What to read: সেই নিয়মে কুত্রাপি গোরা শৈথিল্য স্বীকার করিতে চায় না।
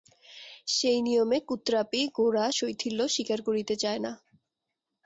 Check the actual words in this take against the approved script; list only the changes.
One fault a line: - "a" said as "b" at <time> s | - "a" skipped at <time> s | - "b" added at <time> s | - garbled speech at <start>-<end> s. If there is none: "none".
none